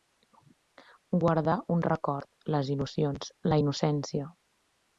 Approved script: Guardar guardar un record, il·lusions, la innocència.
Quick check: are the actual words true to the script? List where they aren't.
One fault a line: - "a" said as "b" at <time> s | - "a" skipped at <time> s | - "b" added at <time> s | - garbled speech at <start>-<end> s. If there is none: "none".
- "guardar" skipped at 1.6 s
- "les" added at 2.6 s